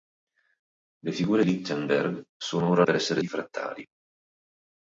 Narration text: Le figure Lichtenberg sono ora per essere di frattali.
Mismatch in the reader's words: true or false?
false